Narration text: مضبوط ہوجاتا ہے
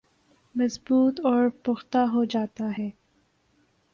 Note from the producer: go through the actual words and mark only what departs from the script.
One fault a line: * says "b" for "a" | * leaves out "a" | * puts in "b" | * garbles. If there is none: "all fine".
* puts in "اور پختہ"